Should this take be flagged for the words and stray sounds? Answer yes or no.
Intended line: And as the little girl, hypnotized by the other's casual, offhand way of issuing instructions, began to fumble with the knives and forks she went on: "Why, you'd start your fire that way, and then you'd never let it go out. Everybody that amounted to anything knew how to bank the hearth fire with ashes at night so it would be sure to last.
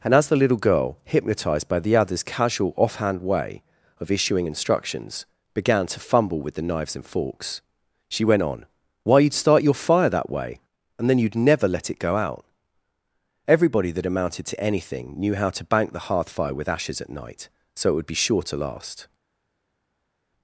no